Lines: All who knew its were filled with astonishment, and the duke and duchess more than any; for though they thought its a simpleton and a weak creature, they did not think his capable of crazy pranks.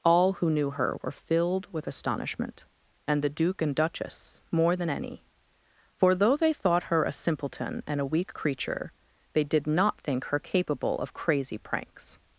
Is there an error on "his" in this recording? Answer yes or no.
yes